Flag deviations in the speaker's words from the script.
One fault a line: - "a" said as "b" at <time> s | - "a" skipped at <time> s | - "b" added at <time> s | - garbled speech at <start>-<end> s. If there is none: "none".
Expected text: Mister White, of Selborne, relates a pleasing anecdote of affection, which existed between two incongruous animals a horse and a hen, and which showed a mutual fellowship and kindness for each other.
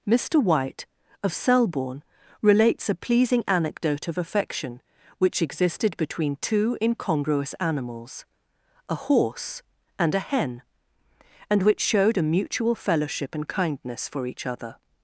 none